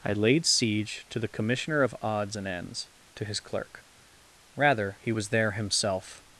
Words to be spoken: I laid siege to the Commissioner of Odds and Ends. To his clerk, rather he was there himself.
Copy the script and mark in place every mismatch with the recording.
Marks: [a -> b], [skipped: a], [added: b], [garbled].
I laid siege to the Commissioner of Odds and Ends. To his clerk, rather he was there himself.